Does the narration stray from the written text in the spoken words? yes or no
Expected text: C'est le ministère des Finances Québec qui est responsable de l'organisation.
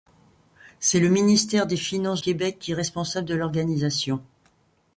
no